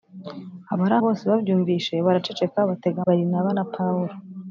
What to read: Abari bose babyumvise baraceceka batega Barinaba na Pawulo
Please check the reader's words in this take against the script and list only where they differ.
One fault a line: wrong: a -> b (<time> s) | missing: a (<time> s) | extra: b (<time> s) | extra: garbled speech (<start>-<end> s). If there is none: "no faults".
no faults